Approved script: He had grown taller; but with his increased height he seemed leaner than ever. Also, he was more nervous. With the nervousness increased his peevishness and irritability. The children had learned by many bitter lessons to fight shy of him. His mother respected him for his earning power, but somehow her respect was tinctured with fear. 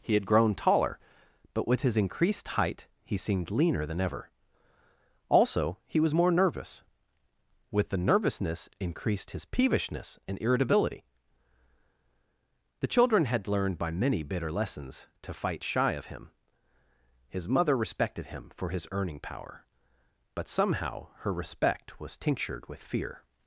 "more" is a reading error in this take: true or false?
false